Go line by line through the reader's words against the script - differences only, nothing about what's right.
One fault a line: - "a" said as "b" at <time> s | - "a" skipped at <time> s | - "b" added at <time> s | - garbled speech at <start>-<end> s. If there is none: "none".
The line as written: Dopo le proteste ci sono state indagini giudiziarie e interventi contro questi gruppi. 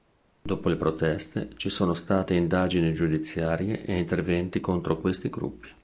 none